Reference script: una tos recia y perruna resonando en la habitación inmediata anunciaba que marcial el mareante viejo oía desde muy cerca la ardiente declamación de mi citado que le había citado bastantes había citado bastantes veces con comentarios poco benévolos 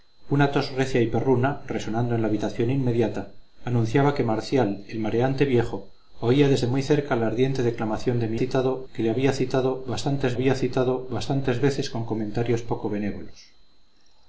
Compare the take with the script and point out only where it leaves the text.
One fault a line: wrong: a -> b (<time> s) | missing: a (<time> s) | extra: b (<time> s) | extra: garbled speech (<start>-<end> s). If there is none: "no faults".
no faults